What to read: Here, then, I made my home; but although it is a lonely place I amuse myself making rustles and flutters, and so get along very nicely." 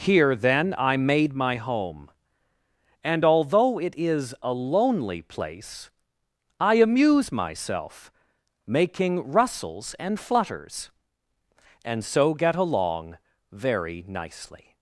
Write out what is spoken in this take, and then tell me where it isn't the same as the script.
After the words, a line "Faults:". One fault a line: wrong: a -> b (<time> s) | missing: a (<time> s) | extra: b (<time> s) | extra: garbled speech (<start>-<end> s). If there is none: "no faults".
Here, then, I made my home; and although it is a lonely place I amuse myself making rustles and flutters, and so get along very nicely."
Faults:
wrong: but -> and (3.0 s)